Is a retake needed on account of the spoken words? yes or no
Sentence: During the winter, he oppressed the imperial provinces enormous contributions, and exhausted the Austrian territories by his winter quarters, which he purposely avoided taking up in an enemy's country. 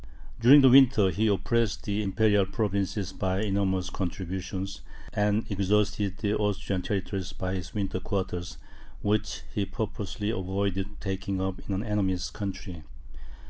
yes